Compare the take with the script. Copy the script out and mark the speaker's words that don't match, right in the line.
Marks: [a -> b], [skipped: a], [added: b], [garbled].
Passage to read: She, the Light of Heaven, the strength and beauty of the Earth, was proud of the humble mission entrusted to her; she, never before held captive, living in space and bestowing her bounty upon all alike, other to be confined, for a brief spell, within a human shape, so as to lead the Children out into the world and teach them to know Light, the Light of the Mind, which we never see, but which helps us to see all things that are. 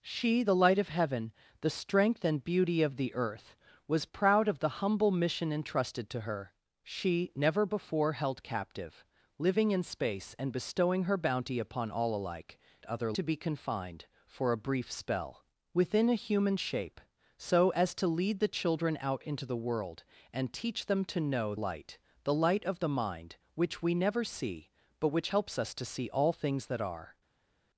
She, the Light of Heaven, the strength and beauty of the Earth, was proud of the humble mission entrusted to her; she, never before held captive, living in space and bestowing her bounty upon all alike, other to be confined, for a brief spell, within a human shape, so as to lead the Children out into the world and teach them to know Light, the Light of the Mind, which we never see, but which helps us to see all things that are.